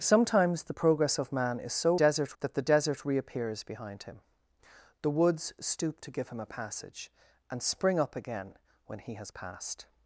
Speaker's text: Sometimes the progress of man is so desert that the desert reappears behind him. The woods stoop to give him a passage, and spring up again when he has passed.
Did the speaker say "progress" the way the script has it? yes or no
yes